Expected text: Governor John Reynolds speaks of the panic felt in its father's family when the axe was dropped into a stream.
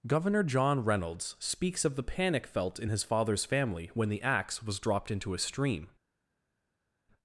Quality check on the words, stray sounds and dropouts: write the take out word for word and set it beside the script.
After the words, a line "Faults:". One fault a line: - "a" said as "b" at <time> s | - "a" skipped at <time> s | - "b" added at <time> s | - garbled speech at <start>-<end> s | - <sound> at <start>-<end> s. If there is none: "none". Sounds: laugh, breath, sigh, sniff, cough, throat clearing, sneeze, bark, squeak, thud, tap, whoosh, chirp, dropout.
Governor John Reynolds speaks of the panic felt in his father's family when the axe was dropped into a stream.
Faults:
- "its" said as "his" at 2.9 s